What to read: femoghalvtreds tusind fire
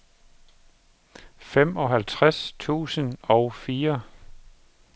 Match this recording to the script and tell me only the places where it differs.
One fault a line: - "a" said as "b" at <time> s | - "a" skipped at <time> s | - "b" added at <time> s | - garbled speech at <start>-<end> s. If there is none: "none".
- "og" added at 3.2 s